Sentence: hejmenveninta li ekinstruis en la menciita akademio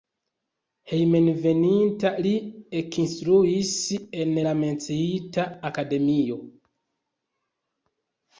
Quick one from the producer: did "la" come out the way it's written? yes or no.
yes